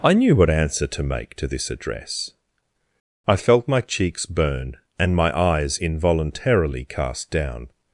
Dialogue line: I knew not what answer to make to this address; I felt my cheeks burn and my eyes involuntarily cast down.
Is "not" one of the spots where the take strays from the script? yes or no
yes